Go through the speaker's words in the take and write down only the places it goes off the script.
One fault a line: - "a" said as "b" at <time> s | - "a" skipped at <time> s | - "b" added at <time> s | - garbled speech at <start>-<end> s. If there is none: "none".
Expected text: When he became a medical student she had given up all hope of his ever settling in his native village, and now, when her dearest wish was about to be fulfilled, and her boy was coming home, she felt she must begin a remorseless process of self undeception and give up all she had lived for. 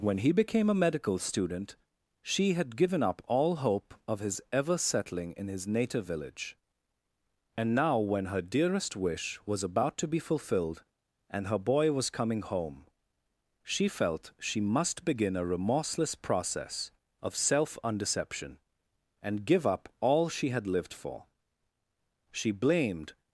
- "She blamed" added at 22.3 s